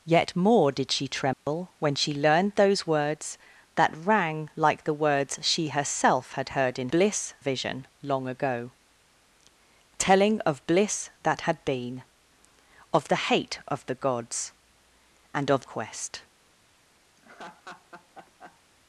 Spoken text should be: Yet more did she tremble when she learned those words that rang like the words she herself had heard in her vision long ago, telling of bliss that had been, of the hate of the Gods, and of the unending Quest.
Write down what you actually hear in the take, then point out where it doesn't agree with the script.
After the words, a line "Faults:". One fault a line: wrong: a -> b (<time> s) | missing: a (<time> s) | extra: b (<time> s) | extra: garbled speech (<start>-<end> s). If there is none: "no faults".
Yet more did she tremble when she learned those words that rang like the words she herself had heard in bliss vision long ago, telling of bliss that had been, of the hate of the Gods, and of Quest.
Faults:
wrong: her -> bliss (6.9 s)
missing: the unending (15.7 s)